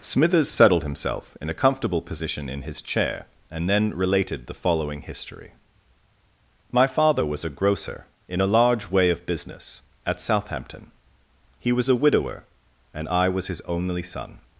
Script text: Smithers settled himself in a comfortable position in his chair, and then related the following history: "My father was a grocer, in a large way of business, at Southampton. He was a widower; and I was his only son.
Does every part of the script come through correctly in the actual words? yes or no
yes